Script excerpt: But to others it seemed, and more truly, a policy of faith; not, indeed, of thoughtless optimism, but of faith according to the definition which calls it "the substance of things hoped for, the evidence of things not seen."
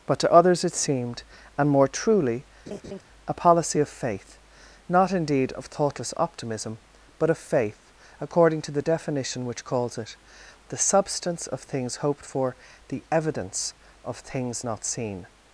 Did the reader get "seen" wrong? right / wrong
right